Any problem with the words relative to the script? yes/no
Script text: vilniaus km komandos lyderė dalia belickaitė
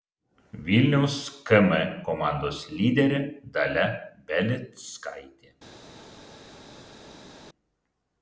no